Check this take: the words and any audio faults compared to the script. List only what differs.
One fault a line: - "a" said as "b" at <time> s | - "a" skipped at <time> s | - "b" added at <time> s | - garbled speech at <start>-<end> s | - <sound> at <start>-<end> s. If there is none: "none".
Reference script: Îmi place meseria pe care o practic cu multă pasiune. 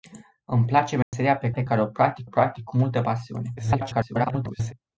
- dropout at 1.0-1.1 s
- "pe" added at 1.5 s
- "practic" added at 2.2 s
- garbled speech at 3.6-4.7 s